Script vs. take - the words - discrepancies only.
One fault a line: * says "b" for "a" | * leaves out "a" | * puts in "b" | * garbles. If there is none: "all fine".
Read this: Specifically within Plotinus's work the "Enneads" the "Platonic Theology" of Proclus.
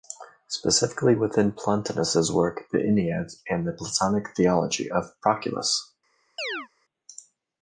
* puts in "and"